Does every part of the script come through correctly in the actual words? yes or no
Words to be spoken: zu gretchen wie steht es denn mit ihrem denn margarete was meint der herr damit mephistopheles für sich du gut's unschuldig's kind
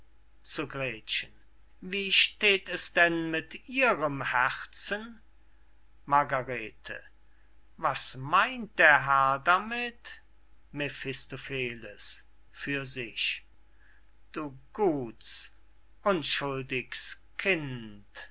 no